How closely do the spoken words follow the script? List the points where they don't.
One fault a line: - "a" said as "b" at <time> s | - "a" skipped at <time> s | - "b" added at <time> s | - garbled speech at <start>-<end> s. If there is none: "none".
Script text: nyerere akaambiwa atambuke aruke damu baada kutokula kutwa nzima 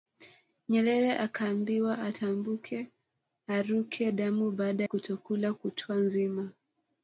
none